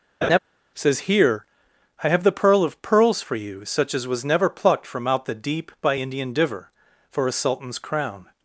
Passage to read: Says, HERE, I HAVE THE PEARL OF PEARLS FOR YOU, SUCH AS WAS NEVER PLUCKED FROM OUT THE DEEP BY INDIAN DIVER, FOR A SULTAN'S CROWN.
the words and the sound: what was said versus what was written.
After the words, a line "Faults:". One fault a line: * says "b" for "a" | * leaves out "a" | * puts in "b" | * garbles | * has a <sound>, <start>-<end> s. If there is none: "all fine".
Says, HERE, I HAVE THE PEARL OF PEARLS FOR YOU, SUCH AS WAS NEVER PLUCKED FROM OUT THE DEEP BY INDIAN DIVER, FOR A SULTAN'S CROWN.
Faults:
* has a laugh, 0.2-0.4 s